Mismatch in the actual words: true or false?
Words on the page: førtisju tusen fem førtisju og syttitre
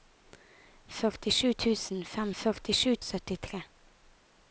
false